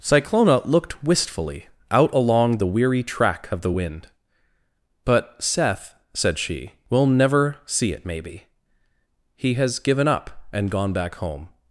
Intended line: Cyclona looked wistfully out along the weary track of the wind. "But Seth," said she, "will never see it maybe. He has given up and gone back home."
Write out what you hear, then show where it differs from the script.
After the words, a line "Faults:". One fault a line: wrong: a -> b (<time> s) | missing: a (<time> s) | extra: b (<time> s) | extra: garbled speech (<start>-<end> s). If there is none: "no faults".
Cyclona looked wistfully out along the weary track of the wind. "But Seth," said she, "will never see it maybe. He has given up and gone back home."
Faults:
no faults